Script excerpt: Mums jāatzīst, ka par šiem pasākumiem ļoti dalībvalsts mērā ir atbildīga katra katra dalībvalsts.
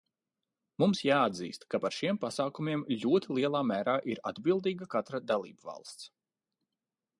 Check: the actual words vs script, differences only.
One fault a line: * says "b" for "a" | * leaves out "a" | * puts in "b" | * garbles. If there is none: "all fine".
* says "lielā" for "dalībvalsts"
* leaves out "katra"